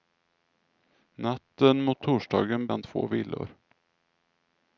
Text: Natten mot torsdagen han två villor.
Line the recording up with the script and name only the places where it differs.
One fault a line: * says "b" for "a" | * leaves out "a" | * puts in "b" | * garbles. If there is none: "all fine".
all fine